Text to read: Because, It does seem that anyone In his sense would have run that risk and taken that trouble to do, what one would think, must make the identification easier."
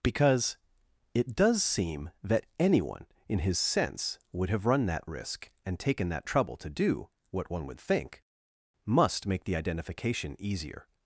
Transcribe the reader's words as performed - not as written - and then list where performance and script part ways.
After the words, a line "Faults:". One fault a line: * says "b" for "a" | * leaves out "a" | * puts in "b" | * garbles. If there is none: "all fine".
Because, It does seem that anyone In his sense would have run that risk and taken that trouble to do, what one would think, must make the identification easier."
Faults:
all fine